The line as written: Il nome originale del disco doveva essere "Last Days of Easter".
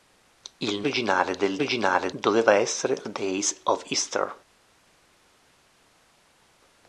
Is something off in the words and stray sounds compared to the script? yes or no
yes